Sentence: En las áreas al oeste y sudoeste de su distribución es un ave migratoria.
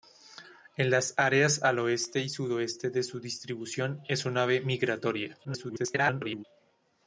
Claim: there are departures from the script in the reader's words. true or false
true